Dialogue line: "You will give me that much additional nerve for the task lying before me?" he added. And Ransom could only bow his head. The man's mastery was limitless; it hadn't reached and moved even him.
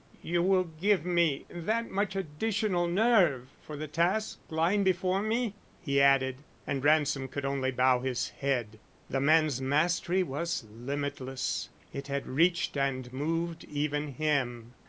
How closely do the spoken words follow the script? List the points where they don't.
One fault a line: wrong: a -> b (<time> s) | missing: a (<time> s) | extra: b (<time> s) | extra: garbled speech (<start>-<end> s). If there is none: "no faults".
wrong: hadn't -> had (12.1 s)